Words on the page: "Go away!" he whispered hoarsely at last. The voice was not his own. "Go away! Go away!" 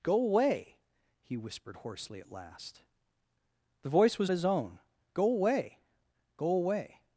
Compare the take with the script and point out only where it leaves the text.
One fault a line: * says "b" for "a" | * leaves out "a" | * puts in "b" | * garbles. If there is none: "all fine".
* leaves out "not"